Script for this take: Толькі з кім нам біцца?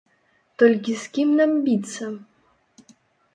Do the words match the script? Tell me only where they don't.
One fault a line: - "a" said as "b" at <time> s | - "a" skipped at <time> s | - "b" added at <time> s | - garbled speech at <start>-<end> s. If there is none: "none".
none